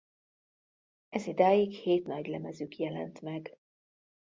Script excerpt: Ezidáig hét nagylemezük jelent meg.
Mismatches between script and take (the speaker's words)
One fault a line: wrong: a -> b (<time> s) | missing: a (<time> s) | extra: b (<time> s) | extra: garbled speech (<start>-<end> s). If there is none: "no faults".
no faults